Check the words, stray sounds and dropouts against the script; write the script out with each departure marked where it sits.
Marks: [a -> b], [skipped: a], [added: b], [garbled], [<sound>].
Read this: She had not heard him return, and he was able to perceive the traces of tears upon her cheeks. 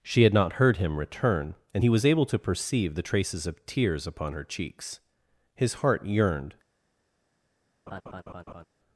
She had not heard him return, and he was able to perceive the traces of tears upon her cheeks. [added: His heart yearned] [laugh]